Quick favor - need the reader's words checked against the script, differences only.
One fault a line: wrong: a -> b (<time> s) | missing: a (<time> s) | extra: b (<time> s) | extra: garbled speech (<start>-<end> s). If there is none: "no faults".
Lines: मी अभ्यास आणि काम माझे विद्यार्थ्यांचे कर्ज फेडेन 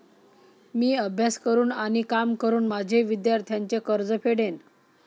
extra: करून (1.4 s)
extra: करून (2.4 s)